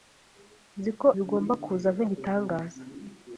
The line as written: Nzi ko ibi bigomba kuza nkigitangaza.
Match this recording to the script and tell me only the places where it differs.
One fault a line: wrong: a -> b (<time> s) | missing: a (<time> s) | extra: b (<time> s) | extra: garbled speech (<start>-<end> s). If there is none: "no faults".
missing: ibi (1.1 s)